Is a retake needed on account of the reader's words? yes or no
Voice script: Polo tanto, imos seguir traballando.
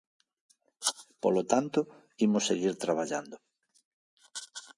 no